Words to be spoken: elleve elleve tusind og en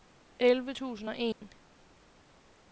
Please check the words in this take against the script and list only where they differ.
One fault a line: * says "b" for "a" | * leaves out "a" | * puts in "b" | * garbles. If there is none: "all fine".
* leaves out "elleve"